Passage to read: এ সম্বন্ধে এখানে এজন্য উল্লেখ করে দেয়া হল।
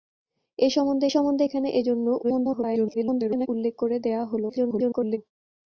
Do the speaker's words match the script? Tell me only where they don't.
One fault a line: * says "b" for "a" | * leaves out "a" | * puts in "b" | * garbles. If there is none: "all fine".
* puts in "সম্বন্ধে"
* garbles
* garbles